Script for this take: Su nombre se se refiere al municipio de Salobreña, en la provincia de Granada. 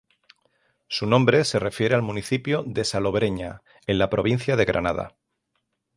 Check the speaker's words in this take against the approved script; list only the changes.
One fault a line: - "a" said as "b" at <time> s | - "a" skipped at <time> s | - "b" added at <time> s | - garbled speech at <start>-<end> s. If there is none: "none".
- "se" skipped at 1.6 s